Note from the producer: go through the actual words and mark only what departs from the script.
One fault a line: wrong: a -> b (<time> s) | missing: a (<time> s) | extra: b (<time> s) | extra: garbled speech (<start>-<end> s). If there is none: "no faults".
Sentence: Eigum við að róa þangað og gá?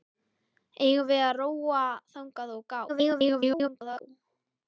extra: garbled speech (2.9-4.0 s)